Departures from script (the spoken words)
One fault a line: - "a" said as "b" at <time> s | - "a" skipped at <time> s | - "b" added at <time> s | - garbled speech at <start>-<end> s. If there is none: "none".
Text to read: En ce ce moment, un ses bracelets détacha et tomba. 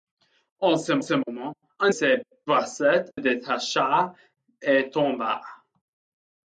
none